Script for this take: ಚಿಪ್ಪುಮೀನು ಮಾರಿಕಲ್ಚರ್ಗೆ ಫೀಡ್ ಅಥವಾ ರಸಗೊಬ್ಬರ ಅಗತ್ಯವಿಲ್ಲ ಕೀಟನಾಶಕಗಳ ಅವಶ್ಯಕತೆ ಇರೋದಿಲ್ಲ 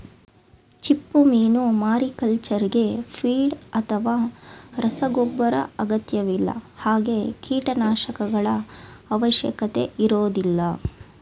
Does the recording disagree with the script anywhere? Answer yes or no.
yes